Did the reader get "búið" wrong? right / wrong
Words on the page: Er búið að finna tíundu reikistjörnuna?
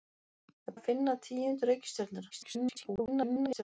wrong